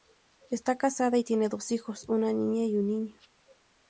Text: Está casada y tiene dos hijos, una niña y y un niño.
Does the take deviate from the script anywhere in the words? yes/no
yes